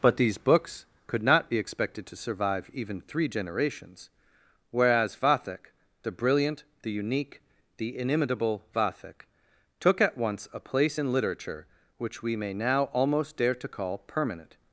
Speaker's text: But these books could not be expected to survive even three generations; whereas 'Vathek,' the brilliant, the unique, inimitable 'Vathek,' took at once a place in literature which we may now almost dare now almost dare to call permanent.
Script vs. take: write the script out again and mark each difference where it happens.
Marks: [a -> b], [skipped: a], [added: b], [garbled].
But these books could not be expected to survive even three generations; whereas 'Vathek,' the brilliant, the unique, [added: the] inimitable 'Vathek,' took at once a place in literature which we may now almost dare [skipped: now almost dare] to call permanent.